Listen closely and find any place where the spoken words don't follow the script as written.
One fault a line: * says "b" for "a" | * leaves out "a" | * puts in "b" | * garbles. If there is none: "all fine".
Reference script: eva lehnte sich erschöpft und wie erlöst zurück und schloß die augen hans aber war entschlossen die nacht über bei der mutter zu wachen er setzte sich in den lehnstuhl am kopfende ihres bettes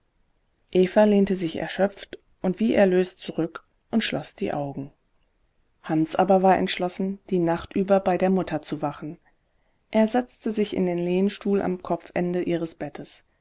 all fine